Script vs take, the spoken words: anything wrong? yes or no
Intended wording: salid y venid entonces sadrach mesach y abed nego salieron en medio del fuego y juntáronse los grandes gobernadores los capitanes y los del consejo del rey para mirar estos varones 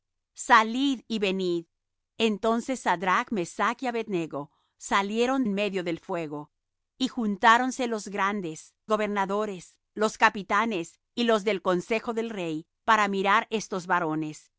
no